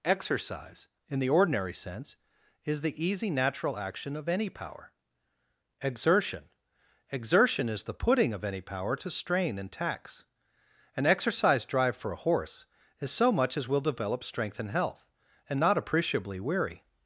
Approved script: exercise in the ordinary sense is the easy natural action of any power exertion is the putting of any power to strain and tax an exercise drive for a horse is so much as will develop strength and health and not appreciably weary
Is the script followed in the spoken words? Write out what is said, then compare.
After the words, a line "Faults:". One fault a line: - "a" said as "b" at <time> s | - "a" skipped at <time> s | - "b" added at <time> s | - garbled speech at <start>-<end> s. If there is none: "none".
exercise in the ordinary sense is the easy natural action of any power exertion exertion is the putting of any power to strain and tax an exercise drive for a horse is so much as will develop strength and health and not appreciably weary
Faults:
- "exertion" added at 7.1 s